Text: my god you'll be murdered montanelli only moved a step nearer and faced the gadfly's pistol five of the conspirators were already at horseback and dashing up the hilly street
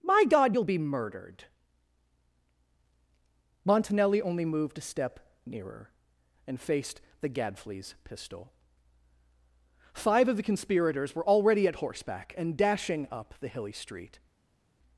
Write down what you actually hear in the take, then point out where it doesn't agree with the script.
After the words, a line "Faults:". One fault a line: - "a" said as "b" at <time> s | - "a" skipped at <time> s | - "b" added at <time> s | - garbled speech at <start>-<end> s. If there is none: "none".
my god you'll be murdered montanelli only moved a step nearer and faced the gadfly's pistol five of the conspirators were already at horseback and dashing up the hilly street
Faults:
none